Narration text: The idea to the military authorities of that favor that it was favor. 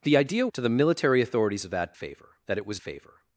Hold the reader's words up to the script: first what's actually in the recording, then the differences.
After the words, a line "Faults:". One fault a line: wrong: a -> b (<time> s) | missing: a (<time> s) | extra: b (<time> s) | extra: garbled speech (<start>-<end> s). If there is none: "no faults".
The idea to the military authorities of that favor that it was favor.
Faults:
no faults